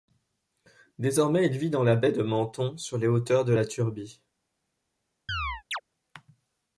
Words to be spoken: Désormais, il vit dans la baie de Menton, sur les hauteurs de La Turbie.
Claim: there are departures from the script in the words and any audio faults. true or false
true